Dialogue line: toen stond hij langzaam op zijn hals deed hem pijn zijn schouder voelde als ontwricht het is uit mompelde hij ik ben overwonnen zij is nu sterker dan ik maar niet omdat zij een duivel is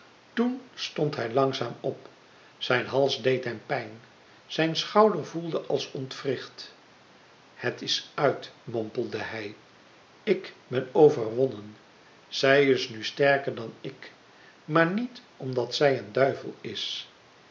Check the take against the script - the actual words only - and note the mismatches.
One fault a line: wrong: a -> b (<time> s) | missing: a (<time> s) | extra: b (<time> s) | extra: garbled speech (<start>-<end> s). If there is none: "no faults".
no faults